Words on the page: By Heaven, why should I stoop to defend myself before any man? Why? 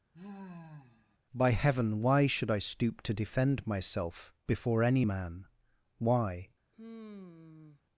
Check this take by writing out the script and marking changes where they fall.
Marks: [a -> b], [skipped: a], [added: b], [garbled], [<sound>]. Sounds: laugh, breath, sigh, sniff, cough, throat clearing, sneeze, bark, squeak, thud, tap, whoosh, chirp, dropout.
[sigh] By Heaven, why should I stoop to defend myself before any man? Why? [sigh]